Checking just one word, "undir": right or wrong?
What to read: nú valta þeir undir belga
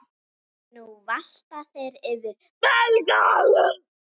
wrong